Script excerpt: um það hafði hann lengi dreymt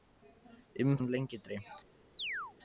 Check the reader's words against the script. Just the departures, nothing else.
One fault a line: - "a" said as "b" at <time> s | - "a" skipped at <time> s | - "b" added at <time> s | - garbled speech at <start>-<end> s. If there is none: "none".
- "það hafði" skipped at 0.9 s